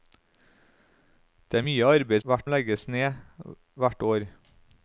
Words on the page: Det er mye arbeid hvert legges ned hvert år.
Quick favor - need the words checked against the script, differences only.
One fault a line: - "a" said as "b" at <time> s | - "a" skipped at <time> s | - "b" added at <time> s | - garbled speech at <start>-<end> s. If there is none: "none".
none